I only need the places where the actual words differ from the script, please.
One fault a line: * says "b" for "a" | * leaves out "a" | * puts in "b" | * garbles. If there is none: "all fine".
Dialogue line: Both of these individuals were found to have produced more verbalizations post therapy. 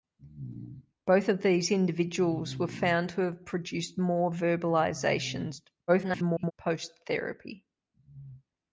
* garbles